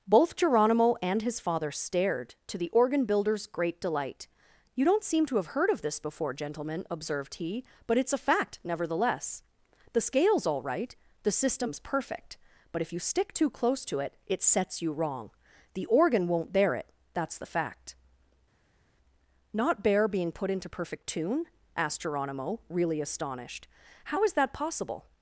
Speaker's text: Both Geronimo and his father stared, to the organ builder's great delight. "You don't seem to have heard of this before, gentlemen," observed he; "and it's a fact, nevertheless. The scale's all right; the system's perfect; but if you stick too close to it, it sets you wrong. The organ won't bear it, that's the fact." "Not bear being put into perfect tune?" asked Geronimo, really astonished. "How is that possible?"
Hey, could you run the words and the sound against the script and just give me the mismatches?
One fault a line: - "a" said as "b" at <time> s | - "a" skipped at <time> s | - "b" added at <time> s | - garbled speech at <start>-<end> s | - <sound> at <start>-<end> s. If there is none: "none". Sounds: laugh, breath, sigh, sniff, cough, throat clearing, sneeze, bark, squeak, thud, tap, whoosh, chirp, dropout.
- "and" said as "but" at 7.8 s